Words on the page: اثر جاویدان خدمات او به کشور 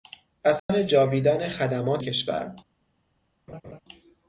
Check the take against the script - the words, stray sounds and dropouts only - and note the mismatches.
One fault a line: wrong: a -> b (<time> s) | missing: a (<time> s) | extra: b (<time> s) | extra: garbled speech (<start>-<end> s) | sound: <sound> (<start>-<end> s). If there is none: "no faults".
sound: dropout (0.6-0.7 s)
missing: او به (2.0 s)
sound: laugh (3.5-3.8 s)